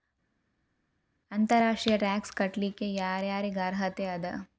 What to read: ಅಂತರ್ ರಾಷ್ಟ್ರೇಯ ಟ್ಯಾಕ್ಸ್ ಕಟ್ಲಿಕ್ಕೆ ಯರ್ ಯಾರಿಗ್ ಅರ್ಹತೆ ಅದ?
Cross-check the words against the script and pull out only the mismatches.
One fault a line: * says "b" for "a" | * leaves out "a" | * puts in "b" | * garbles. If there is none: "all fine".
all fine